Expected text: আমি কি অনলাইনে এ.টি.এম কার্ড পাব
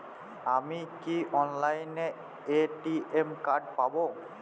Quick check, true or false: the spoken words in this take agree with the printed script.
true